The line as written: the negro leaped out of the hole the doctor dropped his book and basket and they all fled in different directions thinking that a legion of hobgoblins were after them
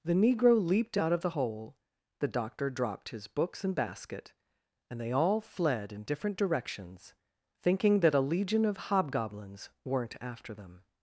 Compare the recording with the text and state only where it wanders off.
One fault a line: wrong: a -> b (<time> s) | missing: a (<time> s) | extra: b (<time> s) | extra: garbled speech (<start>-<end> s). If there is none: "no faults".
wrong: book -> books (3.3 s)
wrong: were -> weren't (9.8 s)